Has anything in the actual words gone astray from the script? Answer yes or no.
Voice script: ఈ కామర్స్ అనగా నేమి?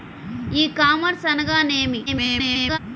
yes